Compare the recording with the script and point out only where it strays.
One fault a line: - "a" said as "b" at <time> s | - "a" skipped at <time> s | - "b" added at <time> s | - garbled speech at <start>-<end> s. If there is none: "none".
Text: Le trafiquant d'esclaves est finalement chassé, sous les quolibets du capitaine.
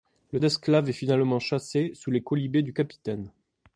- "trafiquant" skipped at 0.4 s